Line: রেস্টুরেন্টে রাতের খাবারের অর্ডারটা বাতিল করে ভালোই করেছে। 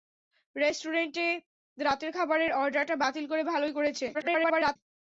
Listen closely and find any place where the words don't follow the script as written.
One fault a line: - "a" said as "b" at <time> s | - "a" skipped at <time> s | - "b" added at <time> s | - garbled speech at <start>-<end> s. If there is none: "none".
- garbled speech at 4.1-4.8 s